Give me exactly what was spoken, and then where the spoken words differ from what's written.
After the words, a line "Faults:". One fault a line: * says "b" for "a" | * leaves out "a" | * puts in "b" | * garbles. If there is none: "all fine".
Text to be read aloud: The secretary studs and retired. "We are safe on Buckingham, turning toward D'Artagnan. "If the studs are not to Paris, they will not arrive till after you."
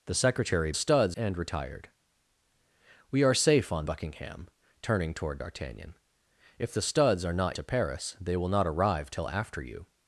The secretary studs and retired. "We are safe on Buckingham, turning toward D'Artagnan. "If the studs are not to Paris, they will not arrive till after you."
Faults:
all fine